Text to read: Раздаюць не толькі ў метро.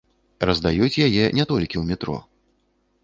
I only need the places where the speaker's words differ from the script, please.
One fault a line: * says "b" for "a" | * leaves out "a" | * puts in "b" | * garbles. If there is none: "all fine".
* puts in "яе"